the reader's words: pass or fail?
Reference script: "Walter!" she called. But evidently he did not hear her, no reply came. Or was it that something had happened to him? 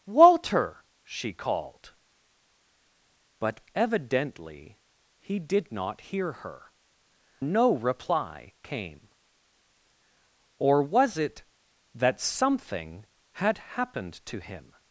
pass